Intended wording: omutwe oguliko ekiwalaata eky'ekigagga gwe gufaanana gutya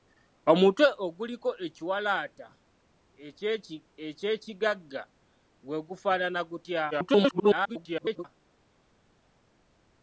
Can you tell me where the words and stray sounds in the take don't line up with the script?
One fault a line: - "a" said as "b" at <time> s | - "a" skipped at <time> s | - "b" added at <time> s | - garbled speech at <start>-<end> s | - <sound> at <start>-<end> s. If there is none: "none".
- garbled speech at 6.9-8.3 s